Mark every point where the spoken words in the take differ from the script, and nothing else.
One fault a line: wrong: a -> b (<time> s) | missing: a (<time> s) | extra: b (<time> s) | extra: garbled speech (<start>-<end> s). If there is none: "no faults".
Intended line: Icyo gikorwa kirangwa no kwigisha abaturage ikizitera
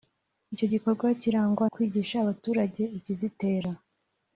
missing: no (1.6 s)